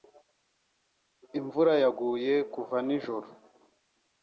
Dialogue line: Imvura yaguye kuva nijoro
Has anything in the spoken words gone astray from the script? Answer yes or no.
no